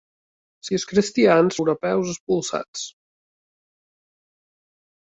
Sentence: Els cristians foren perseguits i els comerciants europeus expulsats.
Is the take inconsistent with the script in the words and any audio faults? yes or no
yes